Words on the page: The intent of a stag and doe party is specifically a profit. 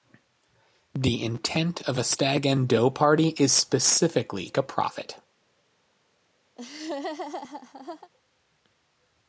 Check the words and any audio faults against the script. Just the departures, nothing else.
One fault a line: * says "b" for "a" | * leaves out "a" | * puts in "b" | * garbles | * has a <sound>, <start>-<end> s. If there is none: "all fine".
* has a laugh, 6.6-8.1 s